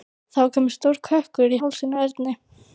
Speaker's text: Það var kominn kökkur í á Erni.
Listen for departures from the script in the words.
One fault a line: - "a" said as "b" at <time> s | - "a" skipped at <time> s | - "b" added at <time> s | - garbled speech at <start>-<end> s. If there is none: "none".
- "stór" added at 0.8 s
- "hálsinn" added at 1.6 s